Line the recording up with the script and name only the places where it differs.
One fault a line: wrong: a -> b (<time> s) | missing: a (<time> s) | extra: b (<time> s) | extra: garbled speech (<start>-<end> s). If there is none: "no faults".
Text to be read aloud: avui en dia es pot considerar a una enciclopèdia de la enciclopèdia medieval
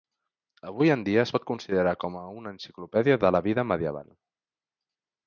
extra: com (2.0 s)
wrong: enciclopèdia -> vida (3.5 s)